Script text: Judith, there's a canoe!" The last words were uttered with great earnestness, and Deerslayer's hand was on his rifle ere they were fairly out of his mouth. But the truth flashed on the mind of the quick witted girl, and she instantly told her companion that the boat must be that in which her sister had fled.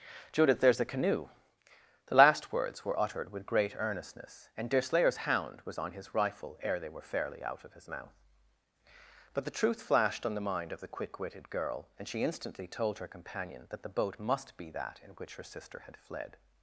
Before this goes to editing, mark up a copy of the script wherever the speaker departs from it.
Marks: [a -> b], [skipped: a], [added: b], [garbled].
Judith, there's a canoe!" The last words were uttered with great earnestness, and Deerslayer's [hand -> hound] was on his rifle ere they were fairly out of his mouth. But the truth flashed on the mind of the quick witted girl, and she instantly told her companion that the boat must be that in which her sister had fled.